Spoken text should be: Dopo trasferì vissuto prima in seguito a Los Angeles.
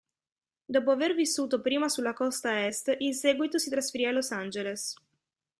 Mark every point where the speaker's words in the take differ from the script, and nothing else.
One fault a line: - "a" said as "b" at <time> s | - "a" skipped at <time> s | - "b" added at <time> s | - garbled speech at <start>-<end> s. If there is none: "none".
- "trasferì" said as "aver" at 0.9 s
- "sulla costa Est" added at 1.9 s
- "si trasferì" added at 3.6 s